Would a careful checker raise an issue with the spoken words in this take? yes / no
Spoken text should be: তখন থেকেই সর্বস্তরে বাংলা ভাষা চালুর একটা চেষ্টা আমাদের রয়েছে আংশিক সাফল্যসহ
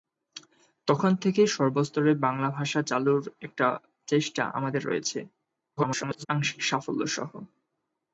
yes